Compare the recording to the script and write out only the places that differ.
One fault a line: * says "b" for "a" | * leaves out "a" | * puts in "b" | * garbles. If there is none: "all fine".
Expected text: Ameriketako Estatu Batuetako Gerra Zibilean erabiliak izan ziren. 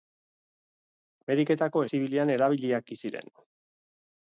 * leaves out "Estatu Batuetako Gerra"
* leaves out "izan"